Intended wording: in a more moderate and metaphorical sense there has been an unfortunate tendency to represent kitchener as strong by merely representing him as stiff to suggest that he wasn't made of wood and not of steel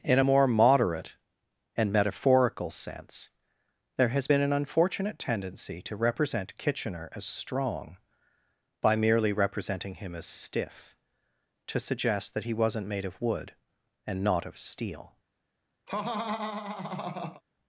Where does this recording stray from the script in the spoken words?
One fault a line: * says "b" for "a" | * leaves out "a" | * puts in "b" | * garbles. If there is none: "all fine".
all fine